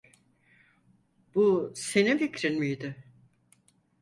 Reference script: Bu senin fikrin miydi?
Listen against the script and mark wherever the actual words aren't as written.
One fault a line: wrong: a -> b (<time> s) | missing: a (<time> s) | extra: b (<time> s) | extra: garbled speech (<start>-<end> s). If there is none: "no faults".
no faults